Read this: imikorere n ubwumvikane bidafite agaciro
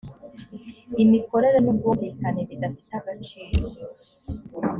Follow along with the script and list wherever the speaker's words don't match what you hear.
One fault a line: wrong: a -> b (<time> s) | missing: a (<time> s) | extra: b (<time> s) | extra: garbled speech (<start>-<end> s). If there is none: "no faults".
no faults